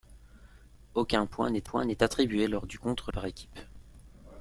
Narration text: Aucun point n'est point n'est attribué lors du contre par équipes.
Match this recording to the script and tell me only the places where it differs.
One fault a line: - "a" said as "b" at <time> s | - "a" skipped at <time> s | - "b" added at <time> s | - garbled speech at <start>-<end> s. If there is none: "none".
none